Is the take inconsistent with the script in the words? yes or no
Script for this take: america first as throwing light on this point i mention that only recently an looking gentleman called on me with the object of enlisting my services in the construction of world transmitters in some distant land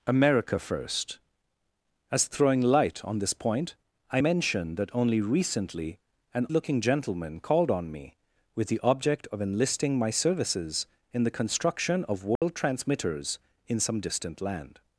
no